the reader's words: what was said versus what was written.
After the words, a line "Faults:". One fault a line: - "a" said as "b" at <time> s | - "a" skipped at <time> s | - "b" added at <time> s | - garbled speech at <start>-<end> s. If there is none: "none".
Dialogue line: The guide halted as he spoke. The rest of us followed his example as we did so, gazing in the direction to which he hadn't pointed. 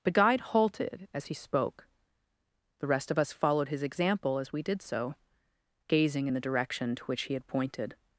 The guide halted as he spoke. The rest of us followed his example as we did so, gazing in the direction to which he had pointed.
Faults:
- "hadn't" said as "had" at 7.3 s